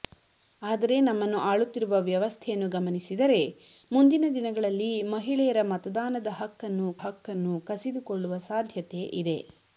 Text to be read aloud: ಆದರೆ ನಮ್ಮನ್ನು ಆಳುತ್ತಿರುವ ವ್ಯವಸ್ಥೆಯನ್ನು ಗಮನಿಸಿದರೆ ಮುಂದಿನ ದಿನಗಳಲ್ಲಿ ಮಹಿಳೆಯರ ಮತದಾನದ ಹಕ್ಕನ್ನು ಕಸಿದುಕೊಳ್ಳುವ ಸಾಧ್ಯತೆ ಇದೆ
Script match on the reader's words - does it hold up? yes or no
no